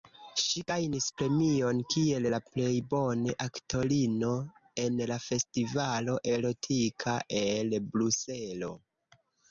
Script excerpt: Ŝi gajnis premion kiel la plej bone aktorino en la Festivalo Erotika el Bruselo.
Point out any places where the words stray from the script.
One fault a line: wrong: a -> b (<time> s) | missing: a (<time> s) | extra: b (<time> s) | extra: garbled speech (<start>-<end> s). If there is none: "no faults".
no faults